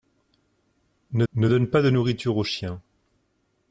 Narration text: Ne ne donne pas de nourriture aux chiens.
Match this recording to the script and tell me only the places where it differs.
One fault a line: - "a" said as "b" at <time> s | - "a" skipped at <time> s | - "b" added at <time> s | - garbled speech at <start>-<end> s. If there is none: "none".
none